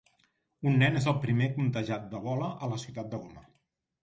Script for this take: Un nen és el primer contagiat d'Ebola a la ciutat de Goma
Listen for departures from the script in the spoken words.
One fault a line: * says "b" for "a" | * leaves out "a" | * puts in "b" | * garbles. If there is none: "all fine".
all fine